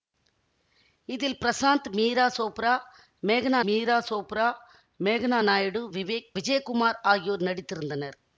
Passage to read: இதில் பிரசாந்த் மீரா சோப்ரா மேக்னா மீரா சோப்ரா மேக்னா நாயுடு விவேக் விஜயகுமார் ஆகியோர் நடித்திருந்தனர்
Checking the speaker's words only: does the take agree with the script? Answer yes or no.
yes